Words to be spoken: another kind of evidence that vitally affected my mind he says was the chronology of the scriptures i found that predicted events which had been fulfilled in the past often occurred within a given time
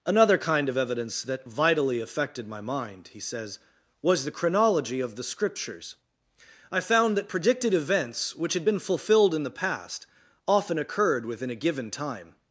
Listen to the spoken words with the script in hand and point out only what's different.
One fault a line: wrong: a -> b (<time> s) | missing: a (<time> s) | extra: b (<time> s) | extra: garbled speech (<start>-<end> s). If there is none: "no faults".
no faults